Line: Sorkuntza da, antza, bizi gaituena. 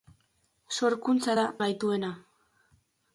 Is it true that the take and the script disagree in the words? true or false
true